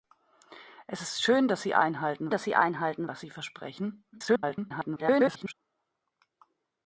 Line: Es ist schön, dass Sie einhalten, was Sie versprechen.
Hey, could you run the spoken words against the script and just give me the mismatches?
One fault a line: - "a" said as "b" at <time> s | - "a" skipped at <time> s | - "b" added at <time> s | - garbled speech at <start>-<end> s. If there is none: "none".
- "dass Sie einhalten" added at 2.3 s
- garbled speech at 4.1-5.5 s